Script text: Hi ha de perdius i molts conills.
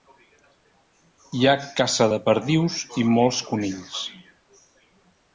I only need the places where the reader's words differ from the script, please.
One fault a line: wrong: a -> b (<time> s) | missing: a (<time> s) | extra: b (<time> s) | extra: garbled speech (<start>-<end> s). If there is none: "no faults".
extra: caça (1.8 s)